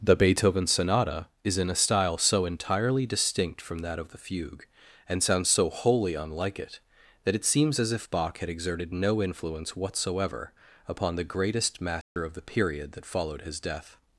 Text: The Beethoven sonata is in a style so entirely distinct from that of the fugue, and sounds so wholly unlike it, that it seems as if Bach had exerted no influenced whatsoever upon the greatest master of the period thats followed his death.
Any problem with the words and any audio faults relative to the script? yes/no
yes